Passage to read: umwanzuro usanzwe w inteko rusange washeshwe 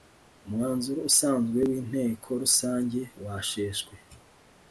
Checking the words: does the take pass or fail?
pass